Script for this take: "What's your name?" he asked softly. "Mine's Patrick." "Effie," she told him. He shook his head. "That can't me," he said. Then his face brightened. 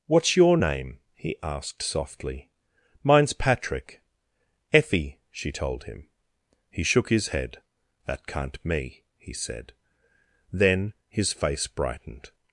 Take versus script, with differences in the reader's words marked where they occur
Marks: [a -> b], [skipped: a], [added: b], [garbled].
"What's your name?" he asked softly. "Mine's Patrick." "Effie," she told him. He shook his head. "That can't me," he said. Then his face brightened.